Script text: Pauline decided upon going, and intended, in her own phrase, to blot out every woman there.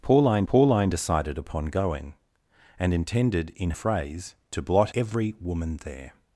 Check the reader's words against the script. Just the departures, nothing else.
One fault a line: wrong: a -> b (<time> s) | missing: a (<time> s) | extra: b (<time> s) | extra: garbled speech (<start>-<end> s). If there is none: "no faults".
extra: pauline (0.4 s)
missing: her own (3.7 s)
missing: out (4.9 s)